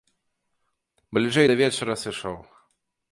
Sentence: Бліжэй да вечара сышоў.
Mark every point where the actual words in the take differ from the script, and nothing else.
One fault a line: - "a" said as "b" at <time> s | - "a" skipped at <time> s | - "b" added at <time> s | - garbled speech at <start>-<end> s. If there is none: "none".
none